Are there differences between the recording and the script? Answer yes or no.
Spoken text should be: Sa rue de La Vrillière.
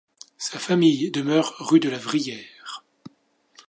yes